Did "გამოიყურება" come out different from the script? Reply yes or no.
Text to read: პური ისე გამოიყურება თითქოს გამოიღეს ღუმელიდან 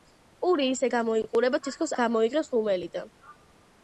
no